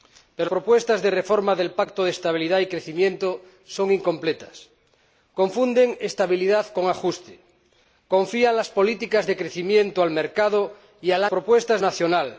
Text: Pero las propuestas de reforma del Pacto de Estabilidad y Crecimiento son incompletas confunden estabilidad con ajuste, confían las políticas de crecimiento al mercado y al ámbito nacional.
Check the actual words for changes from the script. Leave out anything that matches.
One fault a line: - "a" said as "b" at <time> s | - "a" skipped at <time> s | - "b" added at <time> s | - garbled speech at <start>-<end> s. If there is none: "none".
- "las" skipped at 0.5 s
- "ámbito" said as "propuestas" at 11.3 s